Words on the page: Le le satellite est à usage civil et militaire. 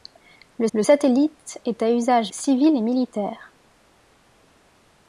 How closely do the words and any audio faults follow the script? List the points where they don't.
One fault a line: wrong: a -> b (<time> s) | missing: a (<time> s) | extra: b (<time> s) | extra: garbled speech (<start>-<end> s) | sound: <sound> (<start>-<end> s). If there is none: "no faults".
no faults